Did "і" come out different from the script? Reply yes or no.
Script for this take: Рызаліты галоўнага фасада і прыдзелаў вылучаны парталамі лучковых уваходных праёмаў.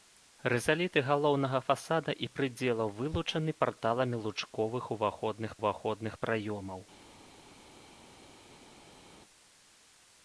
no